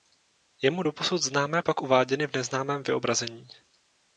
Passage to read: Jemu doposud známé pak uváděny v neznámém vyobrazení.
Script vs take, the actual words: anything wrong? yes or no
no